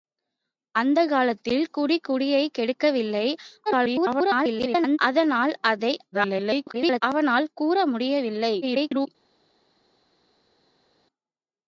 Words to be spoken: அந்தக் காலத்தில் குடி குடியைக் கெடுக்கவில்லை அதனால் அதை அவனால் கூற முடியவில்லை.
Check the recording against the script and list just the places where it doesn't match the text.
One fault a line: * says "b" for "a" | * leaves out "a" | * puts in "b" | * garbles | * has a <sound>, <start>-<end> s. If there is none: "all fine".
* garbles
* garbles
* garbles